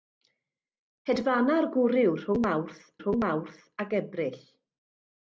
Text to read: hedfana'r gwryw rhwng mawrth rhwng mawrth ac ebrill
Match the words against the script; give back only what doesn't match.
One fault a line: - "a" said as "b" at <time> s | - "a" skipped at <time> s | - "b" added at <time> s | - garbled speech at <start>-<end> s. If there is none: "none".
none